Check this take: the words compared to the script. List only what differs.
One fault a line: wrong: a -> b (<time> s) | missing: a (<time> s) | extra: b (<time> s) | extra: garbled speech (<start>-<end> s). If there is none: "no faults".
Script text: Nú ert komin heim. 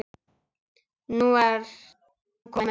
no faults